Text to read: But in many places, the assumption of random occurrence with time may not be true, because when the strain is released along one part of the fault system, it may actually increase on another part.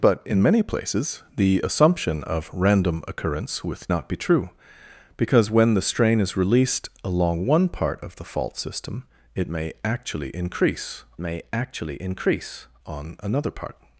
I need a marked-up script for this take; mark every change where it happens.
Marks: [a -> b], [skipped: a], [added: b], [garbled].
But in many places, the assumption of random occurrence with [skipped: time may] not be true, because when the strain is released along one part of the fault system, it may actually increase [added: may actually increase] on another part.